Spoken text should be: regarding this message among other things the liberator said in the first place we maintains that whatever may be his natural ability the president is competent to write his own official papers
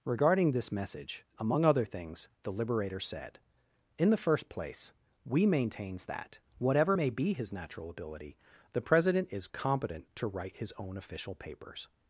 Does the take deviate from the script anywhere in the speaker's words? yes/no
no